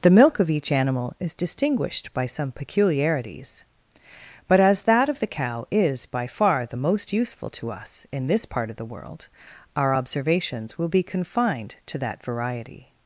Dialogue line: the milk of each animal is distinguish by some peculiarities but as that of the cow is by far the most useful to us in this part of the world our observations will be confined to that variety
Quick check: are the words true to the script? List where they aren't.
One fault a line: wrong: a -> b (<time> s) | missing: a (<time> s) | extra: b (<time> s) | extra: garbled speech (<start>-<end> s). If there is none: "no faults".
wrong: distinguish -> distinguished (1.4 s)